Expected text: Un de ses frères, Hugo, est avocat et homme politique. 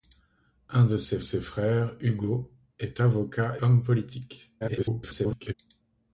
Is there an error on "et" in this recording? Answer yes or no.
yes